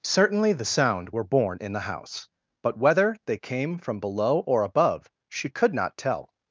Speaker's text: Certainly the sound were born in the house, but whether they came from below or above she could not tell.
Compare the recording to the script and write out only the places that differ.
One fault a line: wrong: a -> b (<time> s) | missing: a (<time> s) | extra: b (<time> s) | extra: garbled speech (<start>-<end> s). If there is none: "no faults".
no faults